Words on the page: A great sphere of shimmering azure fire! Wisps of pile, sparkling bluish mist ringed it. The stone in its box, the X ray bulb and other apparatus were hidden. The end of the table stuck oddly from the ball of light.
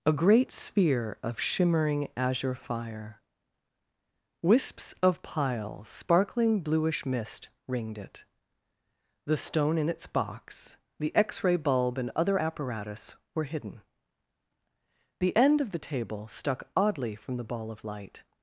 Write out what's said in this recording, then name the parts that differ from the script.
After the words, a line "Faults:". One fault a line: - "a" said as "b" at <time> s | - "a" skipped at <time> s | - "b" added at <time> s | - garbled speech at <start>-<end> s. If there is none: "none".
A great sphere of shimmering azure fire! Wisps of pile, sparkling bluish mist ringed it. The stone in its box, the X ray bulb and other apparatus were hidden. The end of the table stuck oddly from the ball of light.
Faults:
none